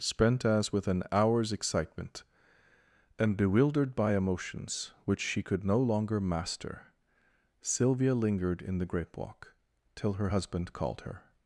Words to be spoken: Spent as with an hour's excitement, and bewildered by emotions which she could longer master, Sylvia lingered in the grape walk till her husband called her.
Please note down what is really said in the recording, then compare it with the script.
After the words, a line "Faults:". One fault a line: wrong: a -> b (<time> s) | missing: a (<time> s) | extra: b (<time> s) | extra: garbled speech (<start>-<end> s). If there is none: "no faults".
Spent as with an hour's excitement, and bewildered by emotions which she could no longer master, Sylvia lingered in the grape walk till her husband called her.
Faults:
extra: no (5.6 s)